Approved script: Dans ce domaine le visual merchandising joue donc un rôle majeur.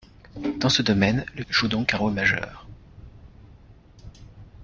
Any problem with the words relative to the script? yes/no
yes